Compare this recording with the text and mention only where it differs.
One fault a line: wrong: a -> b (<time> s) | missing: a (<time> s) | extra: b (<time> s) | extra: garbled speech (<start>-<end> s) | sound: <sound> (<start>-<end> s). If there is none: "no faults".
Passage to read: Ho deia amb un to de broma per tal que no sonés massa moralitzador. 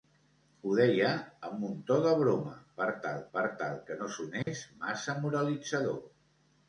extra: per tal (3.3 s)
sound: dropout (4.4-4.5 s)